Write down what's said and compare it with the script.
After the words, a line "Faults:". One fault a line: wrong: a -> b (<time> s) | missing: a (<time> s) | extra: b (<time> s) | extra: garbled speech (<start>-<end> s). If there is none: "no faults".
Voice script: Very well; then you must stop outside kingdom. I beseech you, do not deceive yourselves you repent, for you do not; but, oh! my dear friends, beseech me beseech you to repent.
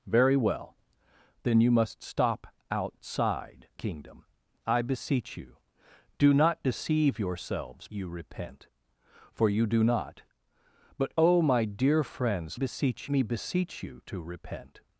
Very well; then you must stop outside kingdom. I beseech you, do not deceive yourselves you repent, for you do not; but, oh! my dear friends, beseech me beseech you to repent.
Faults:
no faults